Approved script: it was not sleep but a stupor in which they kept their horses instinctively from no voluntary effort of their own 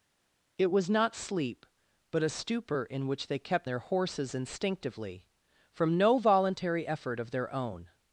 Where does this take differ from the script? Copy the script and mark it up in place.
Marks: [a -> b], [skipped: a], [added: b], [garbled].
it was not sleep but a stupor in which they kept their horses instinctively from no voluntary effort of their own